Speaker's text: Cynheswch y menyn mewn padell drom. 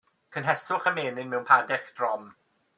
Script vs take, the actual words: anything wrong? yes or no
no